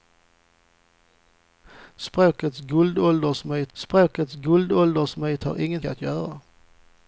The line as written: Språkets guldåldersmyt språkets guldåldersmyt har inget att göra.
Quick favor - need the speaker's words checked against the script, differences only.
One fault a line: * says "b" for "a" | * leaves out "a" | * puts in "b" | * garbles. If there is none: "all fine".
all fine